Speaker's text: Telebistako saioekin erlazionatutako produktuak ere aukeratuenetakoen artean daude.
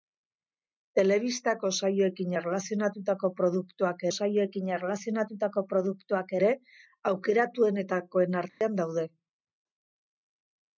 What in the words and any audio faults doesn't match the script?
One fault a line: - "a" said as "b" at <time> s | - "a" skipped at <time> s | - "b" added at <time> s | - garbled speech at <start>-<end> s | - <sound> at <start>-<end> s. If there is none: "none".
- "saioekin erlazionatutako produktuak" added at 4.2 s
- dropout at 8.5-8.6 s